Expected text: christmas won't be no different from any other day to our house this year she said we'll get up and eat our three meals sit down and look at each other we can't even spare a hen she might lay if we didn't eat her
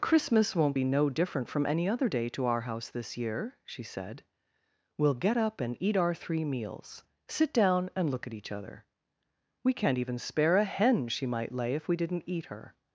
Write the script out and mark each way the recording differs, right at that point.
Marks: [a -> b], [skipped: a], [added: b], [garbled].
christmas won't be no different from any other day to our house this year she said we'll get up and eat our three meals sit down and look at each other we can't even spare a hen she might lay if we didn't eat her